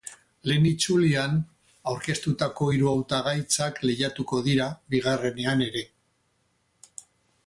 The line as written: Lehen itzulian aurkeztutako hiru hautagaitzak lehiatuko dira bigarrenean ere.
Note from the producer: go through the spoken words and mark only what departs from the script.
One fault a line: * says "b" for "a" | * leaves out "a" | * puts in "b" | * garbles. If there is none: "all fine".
all fine